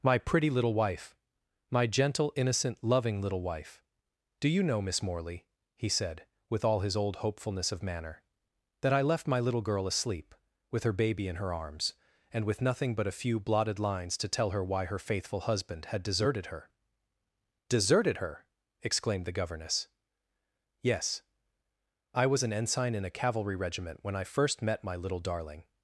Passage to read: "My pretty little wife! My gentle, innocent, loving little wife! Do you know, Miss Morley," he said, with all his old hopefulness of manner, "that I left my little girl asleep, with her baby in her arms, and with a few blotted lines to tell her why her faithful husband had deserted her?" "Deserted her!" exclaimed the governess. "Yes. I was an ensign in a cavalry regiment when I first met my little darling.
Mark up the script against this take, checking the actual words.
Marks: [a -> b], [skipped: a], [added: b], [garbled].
"My pretty little wife! My gentle, innocent, loving little wife! Do you know, Miss Morley," he said, with all his old hopefulness of manner, "that I left my little girl asleep, with her baby in her arms, and with [added: nothing but] a few blotted lines to tell her why her faithful husband had deserted her?" "Deserted her!" exclaimed the governess. "Yes. I was an ensign in a cavalry regiment when I first met my little darling.